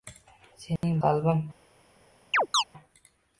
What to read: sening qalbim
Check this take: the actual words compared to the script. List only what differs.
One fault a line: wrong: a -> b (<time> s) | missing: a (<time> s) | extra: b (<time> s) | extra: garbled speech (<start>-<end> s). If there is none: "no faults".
no faults